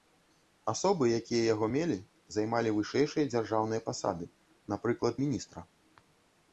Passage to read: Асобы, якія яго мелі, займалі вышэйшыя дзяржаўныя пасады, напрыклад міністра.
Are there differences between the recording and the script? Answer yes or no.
no